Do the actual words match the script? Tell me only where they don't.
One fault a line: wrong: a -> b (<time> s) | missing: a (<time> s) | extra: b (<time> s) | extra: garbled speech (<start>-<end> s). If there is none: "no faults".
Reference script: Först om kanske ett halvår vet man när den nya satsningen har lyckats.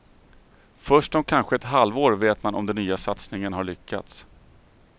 wrong: när -> om (2.5 s)